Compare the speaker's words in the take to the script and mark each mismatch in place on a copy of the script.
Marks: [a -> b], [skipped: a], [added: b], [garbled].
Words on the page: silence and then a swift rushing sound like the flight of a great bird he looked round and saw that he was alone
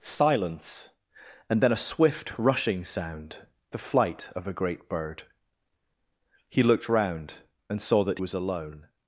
silence and then a swift rushing sound [skipped: like] the flight of a great bird he looked round and saw that [skipped: he] was alone